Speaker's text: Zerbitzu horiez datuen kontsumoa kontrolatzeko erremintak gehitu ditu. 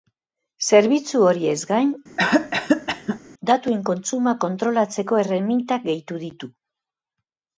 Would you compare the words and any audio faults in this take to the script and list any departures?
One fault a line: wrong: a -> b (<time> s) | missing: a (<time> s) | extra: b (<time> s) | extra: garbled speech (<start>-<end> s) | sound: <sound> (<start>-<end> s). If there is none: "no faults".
extra: gain (1.7 s)
sound: cough (2.2-3.2 s)